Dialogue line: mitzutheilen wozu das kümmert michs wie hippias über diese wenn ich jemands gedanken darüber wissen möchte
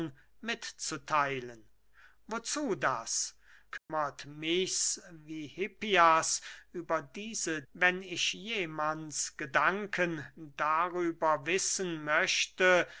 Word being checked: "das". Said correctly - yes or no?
yes